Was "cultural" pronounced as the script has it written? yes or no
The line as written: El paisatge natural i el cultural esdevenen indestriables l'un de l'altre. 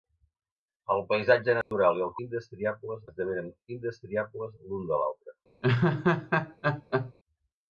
no